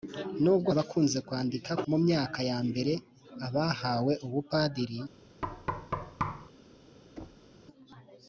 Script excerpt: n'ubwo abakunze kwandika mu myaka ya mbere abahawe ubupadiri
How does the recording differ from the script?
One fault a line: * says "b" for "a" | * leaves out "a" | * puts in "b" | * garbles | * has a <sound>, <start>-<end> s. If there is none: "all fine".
* has a thud, 5.4-6.5 s
* has a thud, 7.2-7.5 s